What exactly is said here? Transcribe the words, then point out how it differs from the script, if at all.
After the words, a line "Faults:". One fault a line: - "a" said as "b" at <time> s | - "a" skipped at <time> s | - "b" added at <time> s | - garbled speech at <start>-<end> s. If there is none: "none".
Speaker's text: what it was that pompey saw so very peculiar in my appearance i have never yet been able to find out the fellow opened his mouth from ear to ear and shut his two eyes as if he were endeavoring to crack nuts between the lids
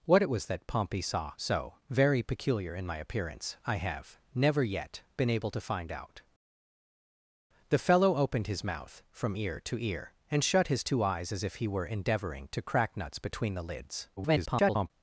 what it was that pompey saw so very peculiar in my appearance i have never yet been able to find out the fellow opened his mouth from ear to ear and shut his two eyes as if he were endeavoring to crack nuts between the lids [garbled]
Faults:
- garbled speech at 14.2-14.9 s